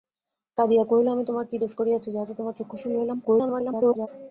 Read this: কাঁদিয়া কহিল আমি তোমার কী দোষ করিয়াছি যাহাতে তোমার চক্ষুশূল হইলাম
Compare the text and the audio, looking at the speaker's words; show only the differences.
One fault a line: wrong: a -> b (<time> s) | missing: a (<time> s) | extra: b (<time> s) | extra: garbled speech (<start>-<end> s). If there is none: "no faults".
extra: garbled speech (3.2-4.1 s)